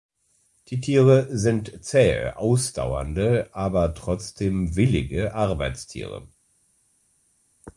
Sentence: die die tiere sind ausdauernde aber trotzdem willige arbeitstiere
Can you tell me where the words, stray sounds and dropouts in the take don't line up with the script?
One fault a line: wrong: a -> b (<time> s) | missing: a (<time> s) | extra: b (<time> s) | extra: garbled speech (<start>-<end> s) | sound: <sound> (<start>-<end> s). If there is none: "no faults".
missing: die (0.8 s)
extra: zähe (1.8 s)